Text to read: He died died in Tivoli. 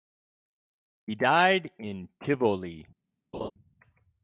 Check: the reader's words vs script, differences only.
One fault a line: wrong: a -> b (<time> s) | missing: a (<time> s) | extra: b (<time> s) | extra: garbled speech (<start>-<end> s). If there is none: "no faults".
missing: died (1.7 s)